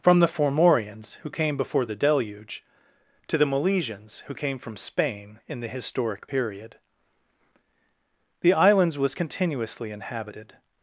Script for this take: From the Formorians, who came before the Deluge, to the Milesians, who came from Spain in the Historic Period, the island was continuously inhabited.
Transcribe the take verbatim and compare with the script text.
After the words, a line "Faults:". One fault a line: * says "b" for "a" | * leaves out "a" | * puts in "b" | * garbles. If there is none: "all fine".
From the Formorians, who came before the Deluge, to the Milesians, who came from Spain in the Historic Period, the islands was continuously inhabited.
Faults:
* says "islands" for "island"